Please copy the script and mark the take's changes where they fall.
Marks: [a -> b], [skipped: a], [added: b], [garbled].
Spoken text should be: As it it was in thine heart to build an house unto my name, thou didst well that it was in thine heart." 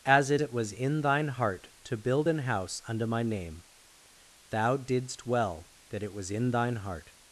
As it it was in thine heart to build an house unto my name, thou didst well that it was in thine heart."